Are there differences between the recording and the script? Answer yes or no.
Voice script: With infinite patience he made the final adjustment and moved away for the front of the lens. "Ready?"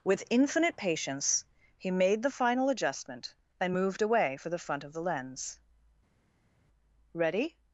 no